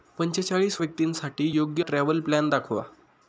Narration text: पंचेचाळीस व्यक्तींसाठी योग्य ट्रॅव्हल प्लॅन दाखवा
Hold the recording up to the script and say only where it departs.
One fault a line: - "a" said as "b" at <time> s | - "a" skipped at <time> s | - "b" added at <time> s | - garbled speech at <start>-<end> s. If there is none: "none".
none